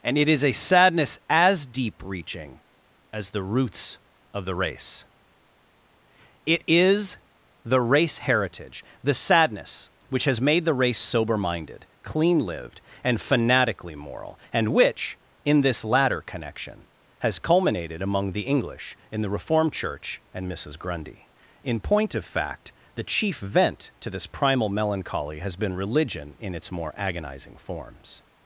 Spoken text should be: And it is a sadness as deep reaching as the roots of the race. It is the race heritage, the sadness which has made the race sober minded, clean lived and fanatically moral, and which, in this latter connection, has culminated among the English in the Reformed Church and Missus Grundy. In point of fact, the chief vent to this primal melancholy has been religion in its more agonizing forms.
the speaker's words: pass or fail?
pass